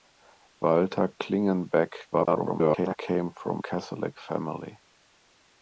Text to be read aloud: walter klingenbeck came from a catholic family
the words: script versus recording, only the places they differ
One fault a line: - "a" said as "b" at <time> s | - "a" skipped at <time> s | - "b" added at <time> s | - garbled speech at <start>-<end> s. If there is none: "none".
- garbled speech at 2.1-3.0 s
- "a" skipped at 3.6 s